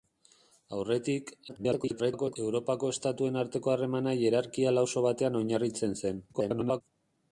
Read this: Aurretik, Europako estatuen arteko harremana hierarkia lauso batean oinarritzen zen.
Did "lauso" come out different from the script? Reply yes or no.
no